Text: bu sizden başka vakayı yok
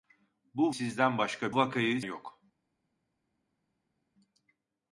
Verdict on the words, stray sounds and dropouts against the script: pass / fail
pass